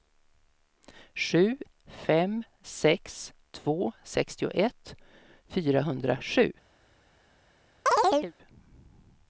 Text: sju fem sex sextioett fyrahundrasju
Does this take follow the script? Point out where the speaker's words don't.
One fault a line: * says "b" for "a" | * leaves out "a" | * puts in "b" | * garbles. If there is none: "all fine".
* puts in "två"